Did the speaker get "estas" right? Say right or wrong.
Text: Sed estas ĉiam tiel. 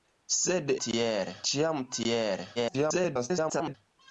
wrong